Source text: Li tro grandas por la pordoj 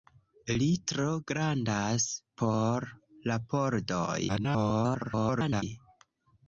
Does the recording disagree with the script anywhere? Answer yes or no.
yes